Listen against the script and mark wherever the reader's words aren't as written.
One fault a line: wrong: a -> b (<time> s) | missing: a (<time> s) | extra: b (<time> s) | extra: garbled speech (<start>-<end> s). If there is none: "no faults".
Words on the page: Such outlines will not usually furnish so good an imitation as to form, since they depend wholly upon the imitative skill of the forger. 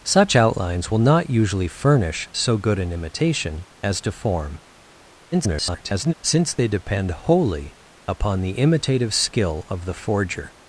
extra: garbled speech (5.3-6.1 s)